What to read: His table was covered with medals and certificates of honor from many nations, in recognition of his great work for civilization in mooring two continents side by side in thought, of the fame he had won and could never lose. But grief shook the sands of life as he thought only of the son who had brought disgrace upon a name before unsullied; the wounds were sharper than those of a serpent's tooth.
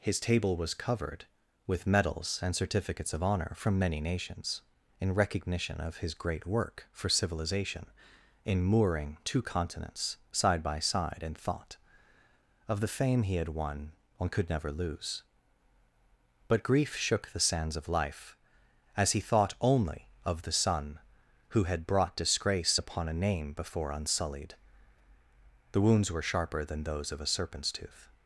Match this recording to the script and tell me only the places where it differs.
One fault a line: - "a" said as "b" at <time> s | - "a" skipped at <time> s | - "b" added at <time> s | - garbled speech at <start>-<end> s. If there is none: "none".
- "and" said as "one" at 14.2 s